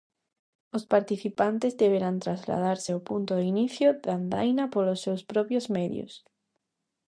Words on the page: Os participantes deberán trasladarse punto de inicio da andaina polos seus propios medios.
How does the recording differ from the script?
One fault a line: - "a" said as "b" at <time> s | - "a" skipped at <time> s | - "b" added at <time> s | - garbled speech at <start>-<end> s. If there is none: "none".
- "ao" added at 2.9 s